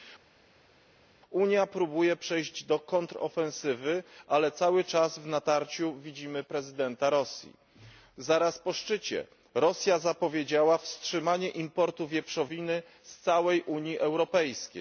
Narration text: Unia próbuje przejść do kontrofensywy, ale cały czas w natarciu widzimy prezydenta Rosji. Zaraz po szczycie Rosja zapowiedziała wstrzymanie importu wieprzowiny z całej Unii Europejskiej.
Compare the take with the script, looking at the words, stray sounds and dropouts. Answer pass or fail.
pass